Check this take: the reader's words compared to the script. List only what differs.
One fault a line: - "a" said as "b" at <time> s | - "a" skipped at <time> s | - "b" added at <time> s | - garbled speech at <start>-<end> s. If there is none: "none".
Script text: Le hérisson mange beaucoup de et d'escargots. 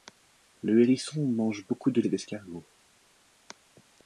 none